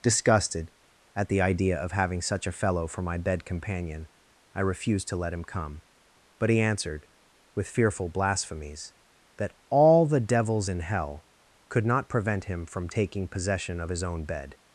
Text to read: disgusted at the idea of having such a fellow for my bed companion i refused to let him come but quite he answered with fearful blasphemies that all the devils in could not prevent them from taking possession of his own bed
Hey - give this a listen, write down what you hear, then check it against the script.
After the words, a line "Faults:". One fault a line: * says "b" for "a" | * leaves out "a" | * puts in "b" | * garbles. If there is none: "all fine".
disgusted at the idea of having such a fellow for my bed companion i refused to let him come but he answered with fearful blasphemies that all the devils in hell could not prevent him from taking possession of his own bed
Faults:
* leaves out "quite"
* puts in "hell"
* says "him" for "them"